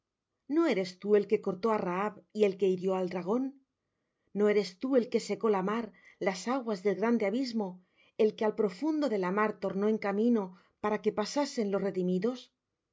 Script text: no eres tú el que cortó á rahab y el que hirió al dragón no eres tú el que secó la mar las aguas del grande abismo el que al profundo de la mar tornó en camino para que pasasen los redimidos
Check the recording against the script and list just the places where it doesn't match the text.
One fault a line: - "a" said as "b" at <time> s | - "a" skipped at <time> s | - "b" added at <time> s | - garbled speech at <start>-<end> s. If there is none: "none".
none